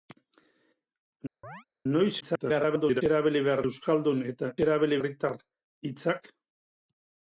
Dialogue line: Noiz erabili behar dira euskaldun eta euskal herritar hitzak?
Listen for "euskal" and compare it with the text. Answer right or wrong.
wrong